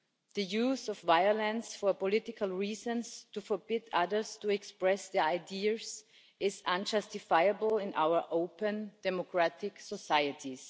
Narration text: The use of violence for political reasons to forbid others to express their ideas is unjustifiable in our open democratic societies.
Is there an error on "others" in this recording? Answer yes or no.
no